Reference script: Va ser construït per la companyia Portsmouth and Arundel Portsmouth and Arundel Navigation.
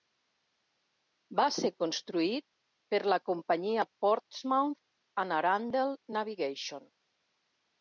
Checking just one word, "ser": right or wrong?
right